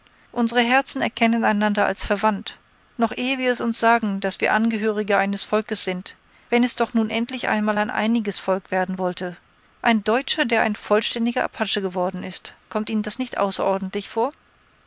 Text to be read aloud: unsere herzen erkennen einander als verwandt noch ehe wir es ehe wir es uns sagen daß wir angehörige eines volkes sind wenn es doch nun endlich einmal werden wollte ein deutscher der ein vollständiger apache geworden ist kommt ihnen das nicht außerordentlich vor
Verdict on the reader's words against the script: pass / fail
fail